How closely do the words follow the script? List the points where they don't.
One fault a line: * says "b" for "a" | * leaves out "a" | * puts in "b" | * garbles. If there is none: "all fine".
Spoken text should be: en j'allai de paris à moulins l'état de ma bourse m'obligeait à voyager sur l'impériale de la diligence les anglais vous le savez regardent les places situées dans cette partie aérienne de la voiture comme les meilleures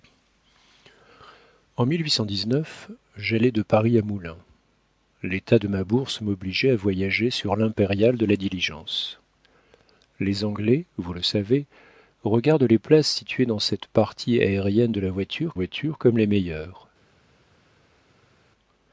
* puts in "voiture"